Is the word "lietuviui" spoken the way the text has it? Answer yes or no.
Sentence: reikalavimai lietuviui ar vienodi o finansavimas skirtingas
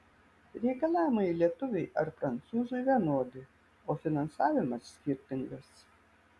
yes